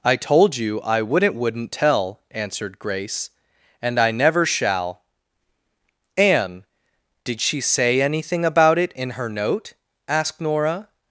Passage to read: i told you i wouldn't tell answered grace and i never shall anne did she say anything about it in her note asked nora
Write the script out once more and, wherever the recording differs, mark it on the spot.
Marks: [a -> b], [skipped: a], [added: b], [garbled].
i told you i wouldn't [added: wouldn't] tell answered grace and i never shall anne did she say anything about it in her note asked nora